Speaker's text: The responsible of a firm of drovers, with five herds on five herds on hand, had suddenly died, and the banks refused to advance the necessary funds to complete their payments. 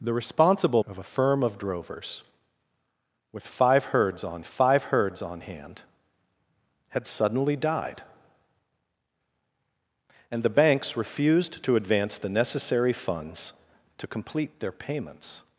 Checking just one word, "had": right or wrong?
right